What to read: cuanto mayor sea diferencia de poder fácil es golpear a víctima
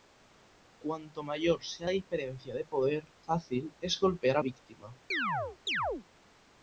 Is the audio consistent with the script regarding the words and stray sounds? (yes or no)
no